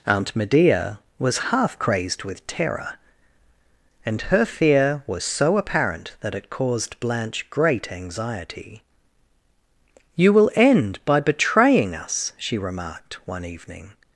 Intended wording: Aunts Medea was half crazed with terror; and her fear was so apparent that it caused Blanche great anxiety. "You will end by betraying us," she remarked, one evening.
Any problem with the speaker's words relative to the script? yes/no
yes